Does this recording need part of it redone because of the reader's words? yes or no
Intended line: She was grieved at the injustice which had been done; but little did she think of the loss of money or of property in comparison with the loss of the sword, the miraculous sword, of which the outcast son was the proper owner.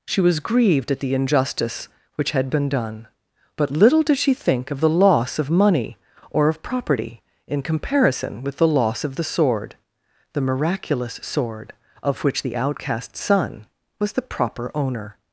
no